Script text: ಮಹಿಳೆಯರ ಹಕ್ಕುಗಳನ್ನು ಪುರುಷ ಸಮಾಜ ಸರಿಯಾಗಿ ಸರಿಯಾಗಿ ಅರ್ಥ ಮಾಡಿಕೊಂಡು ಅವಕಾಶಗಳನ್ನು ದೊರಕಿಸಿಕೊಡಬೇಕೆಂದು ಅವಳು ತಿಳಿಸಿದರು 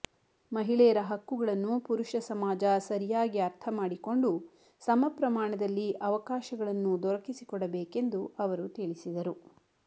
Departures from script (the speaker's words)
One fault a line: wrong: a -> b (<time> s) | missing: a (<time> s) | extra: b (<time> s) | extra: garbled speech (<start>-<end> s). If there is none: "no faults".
missing: ಸರಿಯಾಗಿ (3.4 s)
extra: ಸಮಪ್ರಮಾಣದಲ್ಲಿ (4.8 s)
wrong: ಅವಳು -> ಅವರು (8.4 s)